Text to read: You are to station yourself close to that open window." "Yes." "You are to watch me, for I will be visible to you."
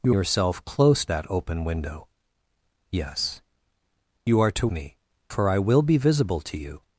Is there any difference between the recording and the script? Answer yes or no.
yes